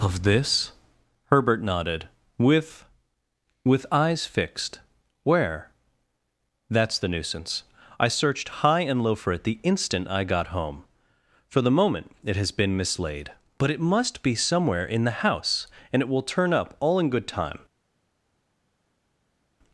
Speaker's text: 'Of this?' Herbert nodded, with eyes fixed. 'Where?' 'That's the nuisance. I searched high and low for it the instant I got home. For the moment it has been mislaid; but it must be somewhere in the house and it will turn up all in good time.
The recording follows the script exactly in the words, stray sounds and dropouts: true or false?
false